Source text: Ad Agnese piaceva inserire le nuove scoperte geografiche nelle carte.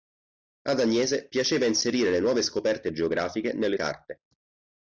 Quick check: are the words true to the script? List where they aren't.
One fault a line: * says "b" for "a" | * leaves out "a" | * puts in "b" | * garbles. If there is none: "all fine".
all fine